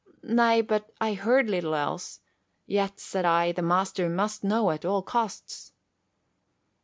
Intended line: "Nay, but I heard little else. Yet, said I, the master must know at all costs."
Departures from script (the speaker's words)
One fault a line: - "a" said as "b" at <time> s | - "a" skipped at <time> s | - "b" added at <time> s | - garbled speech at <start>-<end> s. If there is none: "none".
none